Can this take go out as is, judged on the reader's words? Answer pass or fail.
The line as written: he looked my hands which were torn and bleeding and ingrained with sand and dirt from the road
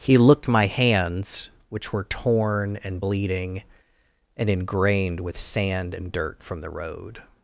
pass